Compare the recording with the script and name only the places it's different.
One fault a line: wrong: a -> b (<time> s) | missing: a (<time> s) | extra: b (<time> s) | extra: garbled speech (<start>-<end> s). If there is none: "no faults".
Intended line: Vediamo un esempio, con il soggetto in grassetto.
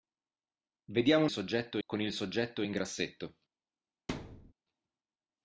wrong: esempio -> soggetto (1.3 s)